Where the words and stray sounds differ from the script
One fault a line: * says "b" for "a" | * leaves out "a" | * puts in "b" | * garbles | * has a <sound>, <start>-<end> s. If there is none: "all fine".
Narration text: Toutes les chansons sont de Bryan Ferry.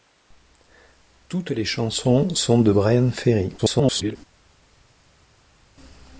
* garbles